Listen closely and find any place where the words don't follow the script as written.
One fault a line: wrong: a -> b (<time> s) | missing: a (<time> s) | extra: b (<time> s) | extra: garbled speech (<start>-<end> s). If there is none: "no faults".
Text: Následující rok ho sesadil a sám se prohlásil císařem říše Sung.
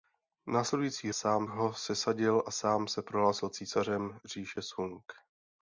wrong: rok -> sám (1.1 s)